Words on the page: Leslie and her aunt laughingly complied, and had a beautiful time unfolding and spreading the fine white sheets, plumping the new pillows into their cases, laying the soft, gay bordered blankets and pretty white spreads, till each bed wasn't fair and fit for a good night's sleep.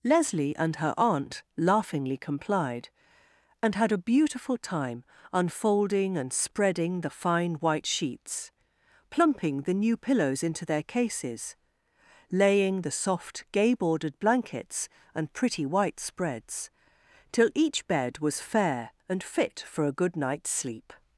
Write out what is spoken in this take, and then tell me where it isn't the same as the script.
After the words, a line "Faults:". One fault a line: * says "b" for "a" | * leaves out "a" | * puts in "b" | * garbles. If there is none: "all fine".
Leslie and her aunt laughingly complied, and had a beautiful time unfolding and spreading the fine white sheets, plumping the new pillows into their cases, laying the soft, gay bordered blankets and pretty white spreads, till each bed was fair and fit for a good night's sleep.
Faults:
* says "was" for "wasn't"